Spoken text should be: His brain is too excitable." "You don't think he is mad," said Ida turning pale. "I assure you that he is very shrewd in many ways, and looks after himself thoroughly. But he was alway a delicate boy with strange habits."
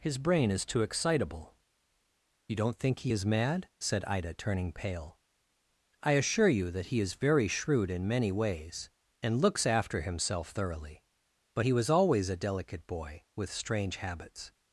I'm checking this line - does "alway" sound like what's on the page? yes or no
no